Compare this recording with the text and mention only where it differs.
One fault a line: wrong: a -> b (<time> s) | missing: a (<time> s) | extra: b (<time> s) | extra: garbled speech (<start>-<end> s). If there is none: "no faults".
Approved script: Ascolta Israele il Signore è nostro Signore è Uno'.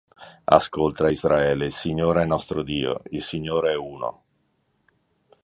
extra: Dio il (2.6 s)